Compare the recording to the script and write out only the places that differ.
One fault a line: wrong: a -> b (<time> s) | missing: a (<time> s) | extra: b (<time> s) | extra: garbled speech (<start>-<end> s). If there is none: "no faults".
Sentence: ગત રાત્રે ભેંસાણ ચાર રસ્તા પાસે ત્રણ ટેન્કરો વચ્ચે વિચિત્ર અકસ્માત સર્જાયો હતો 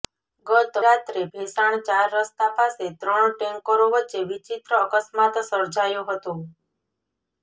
no faults